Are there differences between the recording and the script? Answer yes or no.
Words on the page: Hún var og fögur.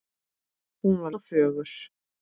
no